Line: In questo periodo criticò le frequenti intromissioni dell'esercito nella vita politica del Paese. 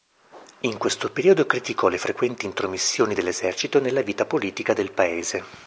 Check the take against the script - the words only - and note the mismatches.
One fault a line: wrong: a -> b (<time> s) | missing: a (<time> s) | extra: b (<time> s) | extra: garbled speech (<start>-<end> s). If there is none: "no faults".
no faults